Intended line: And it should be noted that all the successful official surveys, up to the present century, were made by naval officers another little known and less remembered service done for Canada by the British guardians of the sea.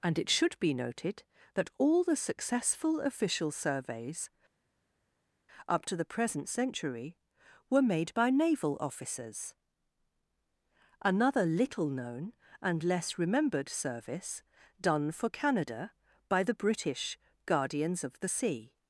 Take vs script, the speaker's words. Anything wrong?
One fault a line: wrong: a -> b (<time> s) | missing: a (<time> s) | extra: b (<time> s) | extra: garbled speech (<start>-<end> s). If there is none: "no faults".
no faults